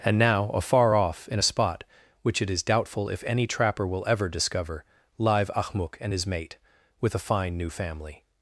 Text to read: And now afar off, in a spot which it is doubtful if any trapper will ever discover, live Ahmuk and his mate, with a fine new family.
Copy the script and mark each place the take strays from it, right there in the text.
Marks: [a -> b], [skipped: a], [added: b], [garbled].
And now afar off, in a spot which it is doubtful if any trapper will ever discover, live Ahmuk and his mate, with a fine new family.